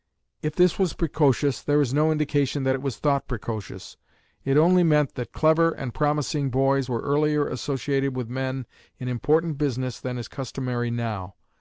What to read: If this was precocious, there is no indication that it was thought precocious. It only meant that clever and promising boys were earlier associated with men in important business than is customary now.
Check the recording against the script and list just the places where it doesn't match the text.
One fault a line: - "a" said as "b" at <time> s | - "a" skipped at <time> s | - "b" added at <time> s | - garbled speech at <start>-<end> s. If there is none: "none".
none